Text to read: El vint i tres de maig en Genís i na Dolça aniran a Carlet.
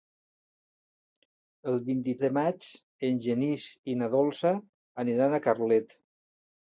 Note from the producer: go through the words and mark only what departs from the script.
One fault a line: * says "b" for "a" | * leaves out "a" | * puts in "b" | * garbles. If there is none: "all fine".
* leaves out "tres"